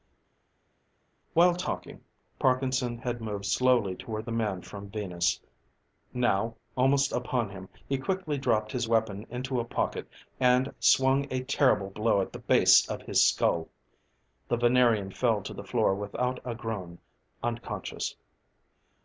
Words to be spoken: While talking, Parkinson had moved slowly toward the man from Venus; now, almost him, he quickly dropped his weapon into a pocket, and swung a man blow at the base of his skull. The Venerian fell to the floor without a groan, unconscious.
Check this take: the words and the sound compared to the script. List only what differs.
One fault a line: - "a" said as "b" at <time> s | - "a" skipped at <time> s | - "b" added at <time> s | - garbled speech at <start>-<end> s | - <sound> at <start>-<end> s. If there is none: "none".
- "upon" added at 7.1 s
- "man" said as "terrible" at 11.4 s